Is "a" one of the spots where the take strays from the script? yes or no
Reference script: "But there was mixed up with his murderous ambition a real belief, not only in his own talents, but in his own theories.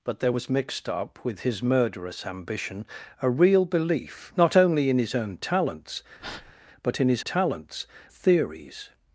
no